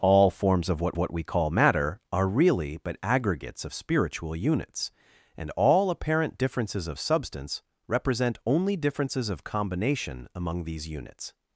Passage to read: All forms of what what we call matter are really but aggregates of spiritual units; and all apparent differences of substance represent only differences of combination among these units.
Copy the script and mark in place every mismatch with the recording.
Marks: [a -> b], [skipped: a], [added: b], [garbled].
All forms of what what we call matter are really but aggregates of spiritual units; and all apparent differences of substance represent only differences of combination among these units.